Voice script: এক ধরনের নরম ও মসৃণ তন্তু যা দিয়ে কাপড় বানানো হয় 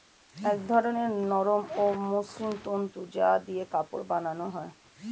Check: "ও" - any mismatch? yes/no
no